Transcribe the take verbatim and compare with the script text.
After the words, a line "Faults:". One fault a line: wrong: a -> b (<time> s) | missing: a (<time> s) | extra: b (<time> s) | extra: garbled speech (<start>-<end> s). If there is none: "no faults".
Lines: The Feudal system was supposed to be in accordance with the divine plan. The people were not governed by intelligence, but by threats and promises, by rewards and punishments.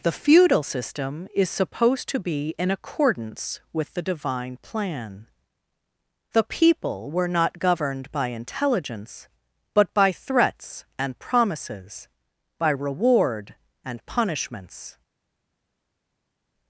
The Feudal system is supposed to be in accordance with the divine plan. The people were not governed by intelligence, but by threats and promises, by reward and punishments.
Faults:
wrong: was -> is (1.3 s)
wrong: rewards -> reward (12.7 s)